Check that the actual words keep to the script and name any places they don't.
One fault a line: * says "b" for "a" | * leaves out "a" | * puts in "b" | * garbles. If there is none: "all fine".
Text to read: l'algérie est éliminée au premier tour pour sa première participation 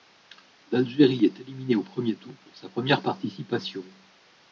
all fine